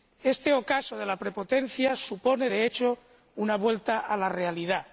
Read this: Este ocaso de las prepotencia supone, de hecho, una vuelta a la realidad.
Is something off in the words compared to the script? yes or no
yes